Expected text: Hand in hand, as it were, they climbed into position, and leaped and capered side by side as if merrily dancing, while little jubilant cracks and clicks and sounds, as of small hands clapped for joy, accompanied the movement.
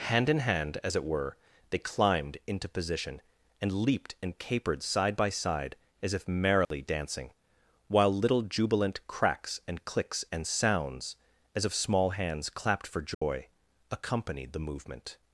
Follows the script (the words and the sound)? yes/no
no